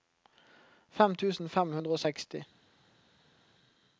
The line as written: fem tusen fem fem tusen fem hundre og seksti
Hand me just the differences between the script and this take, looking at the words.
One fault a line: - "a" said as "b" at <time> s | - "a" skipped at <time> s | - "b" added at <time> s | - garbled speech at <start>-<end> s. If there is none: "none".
- "fem tusen fem" skipped at 1.8 s